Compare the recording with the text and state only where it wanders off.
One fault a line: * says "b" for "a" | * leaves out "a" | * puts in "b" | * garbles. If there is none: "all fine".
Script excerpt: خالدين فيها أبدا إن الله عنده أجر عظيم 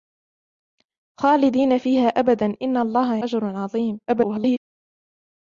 * leaves out "عنده"
* garbles